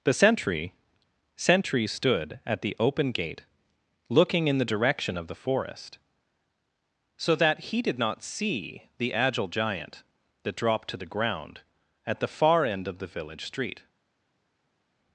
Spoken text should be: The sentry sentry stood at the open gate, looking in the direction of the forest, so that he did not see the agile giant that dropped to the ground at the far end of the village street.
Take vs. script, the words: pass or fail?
pass